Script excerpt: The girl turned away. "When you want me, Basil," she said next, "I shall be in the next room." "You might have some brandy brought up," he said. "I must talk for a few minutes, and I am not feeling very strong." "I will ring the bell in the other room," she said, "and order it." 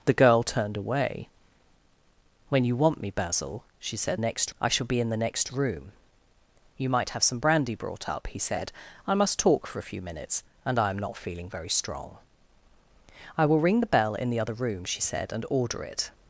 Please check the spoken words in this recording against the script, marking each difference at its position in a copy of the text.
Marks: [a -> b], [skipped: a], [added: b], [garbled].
The girl turned away. "When you want me, Basil," she said next, "I shall be in the next room." "You might have some brandy brought up," he said. "I must talk for a few minutes, and I am not feeling very strong." "I will ring the bell in the other room," she said, "and order it."